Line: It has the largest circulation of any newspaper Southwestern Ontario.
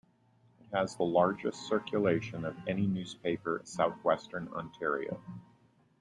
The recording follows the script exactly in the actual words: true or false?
true